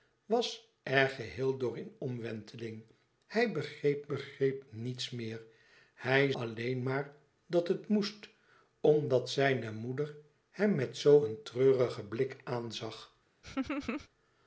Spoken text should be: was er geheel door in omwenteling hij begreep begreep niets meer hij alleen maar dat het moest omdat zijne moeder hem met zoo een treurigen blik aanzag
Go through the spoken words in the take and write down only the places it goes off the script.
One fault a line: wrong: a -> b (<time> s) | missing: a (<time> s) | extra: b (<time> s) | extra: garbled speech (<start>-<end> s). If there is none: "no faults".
no faults